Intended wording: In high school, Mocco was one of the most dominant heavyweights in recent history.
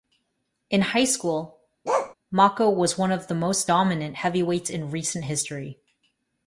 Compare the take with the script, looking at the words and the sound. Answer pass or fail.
fail